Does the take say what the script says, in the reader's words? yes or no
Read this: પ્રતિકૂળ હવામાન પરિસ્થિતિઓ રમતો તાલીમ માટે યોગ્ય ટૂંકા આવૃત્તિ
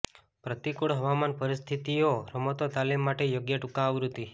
yes